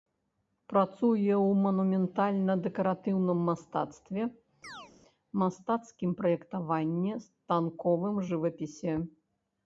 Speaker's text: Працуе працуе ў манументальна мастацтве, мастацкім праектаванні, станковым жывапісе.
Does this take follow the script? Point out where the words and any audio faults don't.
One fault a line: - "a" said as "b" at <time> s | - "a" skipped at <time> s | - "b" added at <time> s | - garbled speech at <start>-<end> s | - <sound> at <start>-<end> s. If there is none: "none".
- "працуе" skipped at 1.3 s
- "дэкаратыўным" added at 2.7 s
- chirp at 4.6-4.9 s